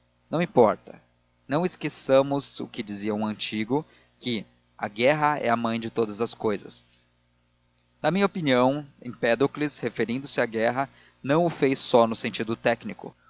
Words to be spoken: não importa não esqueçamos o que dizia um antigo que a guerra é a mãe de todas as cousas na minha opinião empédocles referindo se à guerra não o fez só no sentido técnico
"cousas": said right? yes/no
yes